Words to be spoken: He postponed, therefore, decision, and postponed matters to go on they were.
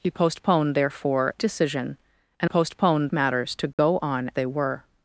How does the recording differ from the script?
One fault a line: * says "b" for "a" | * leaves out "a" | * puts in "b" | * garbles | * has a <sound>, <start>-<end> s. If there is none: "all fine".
* has a dropout, 3.7-3.8 s